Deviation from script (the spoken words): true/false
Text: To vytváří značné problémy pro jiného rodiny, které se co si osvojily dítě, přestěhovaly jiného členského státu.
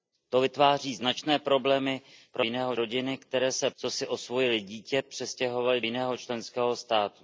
false